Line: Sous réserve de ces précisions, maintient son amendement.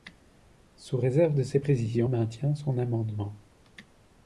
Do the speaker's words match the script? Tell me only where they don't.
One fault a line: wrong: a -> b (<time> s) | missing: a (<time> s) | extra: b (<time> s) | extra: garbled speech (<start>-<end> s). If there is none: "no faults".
no faults